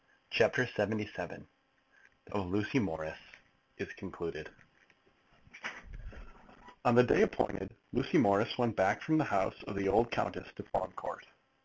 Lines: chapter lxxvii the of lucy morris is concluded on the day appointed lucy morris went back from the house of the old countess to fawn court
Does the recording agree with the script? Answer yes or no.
yes